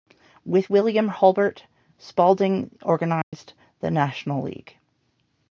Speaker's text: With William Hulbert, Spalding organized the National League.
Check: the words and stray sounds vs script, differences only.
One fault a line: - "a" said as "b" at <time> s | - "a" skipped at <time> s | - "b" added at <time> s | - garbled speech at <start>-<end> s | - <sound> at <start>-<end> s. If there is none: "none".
- dropout at 3.2-3.3 s